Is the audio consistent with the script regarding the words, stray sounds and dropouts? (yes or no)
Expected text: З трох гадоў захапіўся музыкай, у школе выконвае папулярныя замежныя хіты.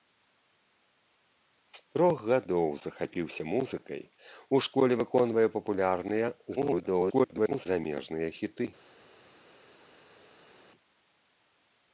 no